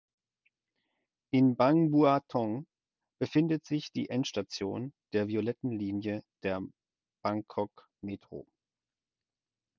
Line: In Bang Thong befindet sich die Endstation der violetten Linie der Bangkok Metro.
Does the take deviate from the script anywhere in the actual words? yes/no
yes